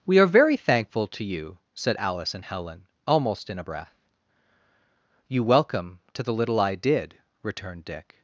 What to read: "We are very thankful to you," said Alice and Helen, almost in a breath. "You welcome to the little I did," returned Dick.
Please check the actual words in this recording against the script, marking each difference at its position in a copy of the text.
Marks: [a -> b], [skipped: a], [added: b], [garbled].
"We are very thankful to you," said Alice and Helen, almost in a breath. "You welcome to the little I did," returned Dick.